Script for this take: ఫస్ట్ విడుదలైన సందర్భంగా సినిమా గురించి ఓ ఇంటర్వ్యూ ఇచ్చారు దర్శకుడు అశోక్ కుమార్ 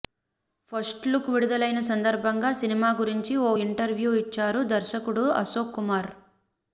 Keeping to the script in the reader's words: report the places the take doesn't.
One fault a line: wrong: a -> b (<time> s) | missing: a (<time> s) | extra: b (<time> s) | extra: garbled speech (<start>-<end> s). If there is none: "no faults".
extra: లుక్ (1.1 s)